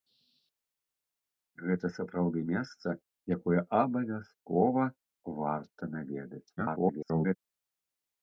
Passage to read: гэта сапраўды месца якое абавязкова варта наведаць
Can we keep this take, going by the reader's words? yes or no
no